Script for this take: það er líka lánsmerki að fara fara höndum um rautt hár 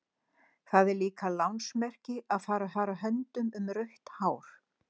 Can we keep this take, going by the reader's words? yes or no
yes